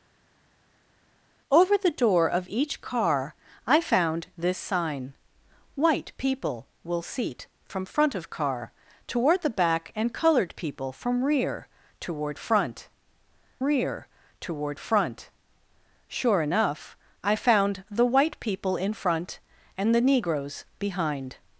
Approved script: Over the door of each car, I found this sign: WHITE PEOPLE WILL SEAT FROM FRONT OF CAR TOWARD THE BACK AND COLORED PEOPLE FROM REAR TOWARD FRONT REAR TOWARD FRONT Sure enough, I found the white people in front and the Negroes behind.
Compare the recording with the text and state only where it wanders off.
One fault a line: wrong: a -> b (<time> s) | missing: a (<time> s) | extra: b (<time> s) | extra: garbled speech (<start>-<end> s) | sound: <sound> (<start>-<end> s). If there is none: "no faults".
no faults